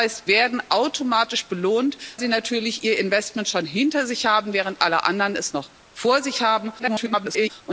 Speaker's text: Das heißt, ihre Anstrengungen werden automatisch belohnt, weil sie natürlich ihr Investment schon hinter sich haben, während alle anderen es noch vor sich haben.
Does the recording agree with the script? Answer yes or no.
no